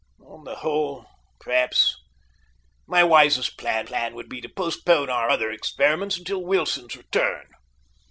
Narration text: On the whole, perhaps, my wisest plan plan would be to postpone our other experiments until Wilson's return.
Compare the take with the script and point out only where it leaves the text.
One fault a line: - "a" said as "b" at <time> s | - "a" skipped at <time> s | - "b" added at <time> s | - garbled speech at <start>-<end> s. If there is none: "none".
none